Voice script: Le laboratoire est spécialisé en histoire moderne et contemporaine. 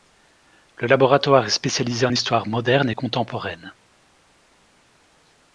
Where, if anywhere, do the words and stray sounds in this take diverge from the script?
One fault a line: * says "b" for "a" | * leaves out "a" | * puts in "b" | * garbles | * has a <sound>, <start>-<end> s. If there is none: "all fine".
all fine